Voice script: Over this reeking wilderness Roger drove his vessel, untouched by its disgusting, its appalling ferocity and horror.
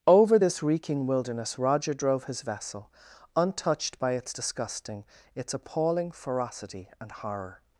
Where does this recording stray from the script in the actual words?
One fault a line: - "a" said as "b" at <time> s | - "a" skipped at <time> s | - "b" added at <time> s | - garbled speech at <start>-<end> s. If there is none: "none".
none